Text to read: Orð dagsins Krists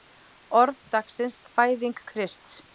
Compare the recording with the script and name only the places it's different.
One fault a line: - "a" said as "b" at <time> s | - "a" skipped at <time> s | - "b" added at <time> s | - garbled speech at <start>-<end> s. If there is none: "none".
- "Fæðing" added at 1.6 s